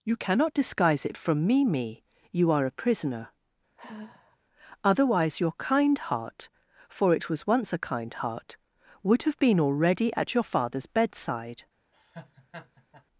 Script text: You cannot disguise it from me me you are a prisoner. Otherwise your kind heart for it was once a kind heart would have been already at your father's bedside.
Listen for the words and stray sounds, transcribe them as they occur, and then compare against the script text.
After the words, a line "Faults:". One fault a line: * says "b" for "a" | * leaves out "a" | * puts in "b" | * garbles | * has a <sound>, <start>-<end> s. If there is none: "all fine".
You cannot disguise it from me me you are a prisoner. Otherwise your kind heart for it was once a kind heart would have been already at your father's bedside.
Faults:
* has a sigh, 3.8-4.4 s
* has a laugh, 11.9-13.0 s